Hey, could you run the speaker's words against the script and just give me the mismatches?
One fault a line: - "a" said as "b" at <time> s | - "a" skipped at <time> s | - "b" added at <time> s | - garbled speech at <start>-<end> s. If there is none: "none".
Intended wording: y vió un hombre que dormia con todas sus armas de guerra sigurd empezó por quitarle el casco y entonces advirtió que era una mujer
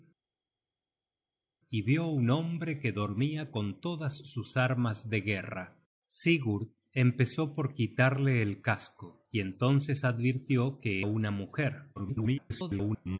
- "era" skipped at 11.1 s
- garbled speech at 12.0-13.2 s